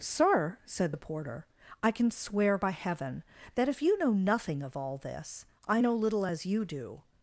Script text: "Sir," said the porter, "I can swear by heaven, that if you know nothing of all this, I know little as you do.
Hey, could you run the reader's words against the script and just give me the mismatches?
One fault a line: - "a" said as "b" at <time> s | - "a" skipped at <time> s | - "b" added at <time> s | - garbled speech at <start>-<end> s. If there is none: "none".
none